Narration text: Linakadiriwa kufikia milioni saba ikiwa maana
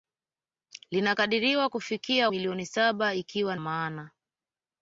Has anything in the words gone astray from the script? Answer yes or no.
no